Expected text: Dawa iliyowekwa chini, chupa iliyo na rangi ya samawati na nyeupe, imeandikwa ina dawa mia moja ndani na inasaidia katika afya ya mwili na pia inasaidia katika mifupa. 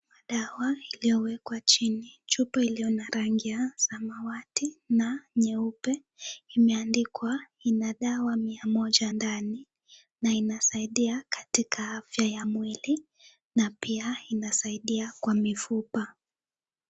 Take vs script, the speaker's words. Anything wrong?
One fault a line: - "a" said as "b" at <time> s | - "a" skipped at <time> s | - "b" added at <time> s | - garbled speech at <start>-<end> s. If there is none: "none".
- "katika" said as "kwa" at 15.2 s